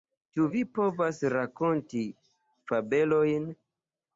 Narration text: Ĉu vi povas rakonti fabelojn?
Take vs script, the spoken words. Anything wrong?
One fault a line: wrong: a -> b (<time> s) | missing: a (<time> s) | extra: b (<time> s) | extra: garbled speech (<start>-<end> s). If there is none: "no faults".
no faults